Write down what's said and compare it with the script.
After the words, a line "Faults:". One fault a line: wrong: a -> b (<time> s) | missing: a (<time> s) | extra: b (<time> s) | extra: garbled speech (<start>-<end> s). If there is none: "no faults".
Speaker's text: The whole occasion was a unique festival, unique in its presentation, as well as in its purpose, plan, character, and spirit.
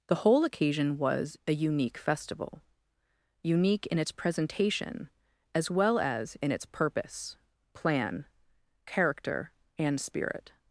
The whole occasion was a unique festival, unique in its presentation, as well as in its purpose, plan, character, and spirit.
Faults:
no faults